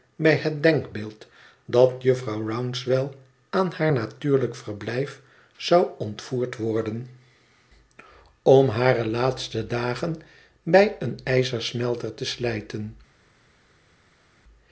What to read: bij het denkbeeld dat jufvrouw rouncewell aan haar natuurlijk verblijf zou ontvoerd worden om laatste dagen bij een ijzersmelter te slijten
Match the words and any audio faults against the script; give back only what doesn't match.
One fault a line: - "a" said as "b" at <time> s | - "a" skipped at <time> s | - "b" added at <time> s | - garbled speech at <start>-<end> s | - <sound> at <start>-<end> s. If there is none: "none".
- "hare" added at 8.7 s